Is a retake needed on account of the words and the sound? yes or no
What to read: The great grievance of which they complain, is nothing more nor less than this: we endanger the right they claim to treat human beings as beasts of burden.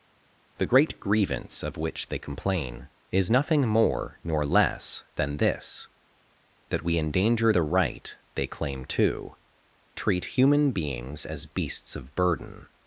yes